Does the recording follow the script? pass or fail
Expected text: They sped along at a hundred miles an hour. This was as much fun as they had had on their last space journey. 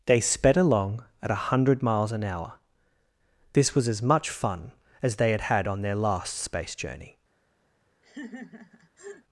pass